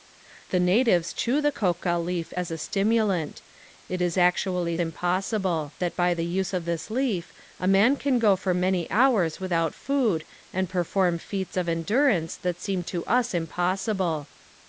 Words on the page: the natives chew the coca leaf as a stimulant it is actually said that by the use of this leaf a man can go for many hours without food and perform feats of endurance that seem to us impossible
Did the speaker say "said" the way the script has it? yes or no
no